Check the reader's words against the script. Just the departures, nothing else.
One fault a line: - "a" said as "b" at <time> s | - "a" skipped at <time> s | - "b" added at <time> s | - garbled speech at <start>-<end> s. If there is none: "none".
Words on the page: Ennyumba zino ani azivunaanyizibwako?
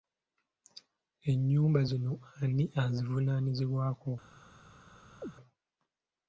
none